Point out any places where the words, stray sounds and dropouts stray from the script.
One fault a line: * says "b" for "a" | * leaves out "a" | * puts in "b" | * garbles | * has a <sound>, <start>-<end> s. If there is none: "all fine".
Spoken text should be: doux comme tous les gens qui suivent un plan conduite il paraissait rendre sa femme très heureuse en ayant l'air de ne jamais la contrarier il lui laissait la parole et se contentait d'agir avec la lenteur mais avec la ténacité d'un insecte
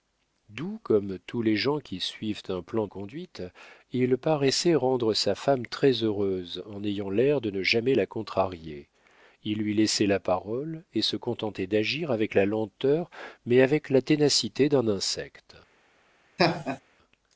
* has a laugh, 16.4-16.8 s